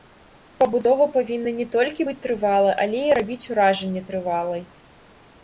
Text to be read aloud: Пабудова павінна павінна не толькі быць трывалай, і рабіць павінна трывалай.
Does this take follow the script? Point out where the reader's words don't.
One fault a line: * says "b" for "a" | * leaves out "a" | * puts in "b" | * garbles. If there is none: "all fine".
* leaves out "павінна"
* puts in "але"
* says "уражанне" for "павінна"